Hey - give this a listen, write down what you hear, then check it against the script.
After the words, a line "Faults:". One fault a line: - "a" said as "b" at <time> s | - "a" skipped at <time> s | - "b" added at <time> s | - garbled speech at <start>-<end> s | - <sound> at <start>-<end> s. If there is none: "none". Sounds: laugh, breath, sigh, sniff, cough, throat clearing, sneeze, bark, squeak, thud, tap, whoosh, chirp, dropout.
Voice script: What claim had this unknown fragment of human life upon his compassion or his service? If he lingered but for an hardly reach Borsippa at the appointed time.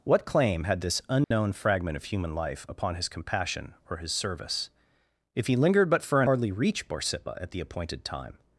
What claim had this unknown fragment of human life upon his compassion or his service? If he lingered but for an hardly reach Borsippa at the appointed time.
Faults:
- dropout at 1.2-1.3 s